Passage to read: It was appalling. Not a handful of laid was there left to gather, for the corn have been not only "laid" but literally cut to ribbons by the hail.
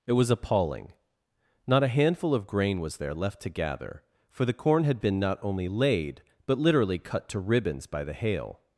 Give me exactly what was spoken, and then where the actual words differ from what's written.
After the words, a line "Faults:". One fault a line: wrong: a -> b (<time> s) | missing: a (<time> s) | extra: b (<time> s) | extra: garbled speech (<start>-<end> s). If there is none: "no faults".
It was appalling. Not a handful of grain was there left to gather, for the corn had been not only "laid" but literally cut to ribbons by the hail.
Faults:
wrong: laid -> grain (2.5 s)
wrong: have -> had (4.8 s)